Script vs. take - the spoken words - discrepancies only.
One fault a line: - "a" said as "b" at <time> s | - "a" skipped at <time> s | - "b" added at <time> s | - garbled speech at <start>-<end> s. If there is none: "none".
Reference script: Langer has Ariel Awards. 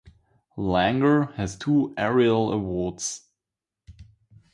- "two" added at 1.6 s